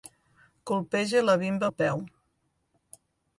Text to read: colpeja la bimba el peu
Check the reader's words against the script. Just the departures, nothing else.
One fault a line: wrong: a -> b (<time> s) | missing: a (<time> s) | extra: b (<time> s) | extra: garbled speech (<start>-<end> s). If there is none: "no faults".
no faults